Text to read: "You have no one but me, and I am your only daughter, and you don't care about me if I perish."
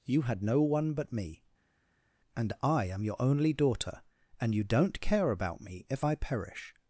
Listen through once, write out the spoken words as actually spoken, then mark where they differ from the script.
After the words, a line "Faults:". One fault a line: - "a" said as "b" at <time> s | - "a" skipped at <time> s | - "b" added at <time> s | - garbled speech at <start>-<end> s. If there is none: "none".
"You had no one but me, and I am your only daughter, and you don't care about me if I perish."
Faults:
- "have" said as "had" at 0.2 s